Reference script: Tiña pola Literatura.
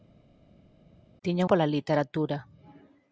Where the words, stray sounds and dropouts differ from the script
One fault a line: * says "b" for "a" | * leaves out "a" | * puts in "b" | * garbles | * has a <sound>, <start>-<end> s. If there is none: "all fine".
all fine